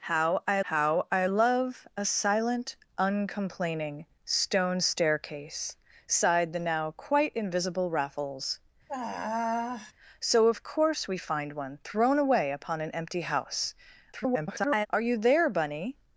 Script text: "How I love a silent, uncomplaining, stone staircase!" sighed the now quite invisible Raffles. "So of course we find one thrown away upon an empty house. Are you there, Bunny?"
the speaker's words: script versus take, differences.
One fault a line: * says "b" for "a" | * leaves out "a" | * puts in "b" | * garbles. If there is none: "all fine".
* puts in "how I"
* garbles